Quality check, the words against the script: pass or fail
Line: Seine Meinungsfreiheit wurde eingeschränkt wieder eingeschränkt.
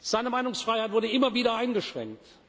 fail